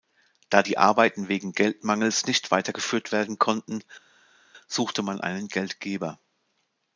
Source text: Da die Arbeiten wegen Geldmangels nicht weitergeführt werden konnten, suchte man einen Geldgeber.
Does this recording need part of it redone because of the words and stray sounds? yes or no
no